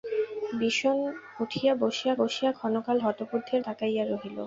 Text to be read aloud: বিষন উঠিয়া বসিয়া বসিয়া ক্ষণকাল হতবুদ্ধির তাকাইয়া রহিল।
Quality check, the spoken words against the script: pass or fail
pass